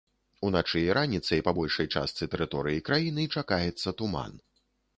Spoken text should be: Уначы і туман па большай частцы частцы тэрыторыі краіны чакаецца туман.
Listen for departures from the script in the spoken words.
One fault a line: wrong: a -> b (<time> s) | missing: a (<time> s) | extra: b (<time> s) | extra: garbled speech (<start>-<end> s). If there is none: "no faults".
wrong: туман -> раніцай (1.0 s)
missing: частцы (2.2 s)